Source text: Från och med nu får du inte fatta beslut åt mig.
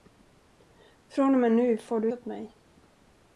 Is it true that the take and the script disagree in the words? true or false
true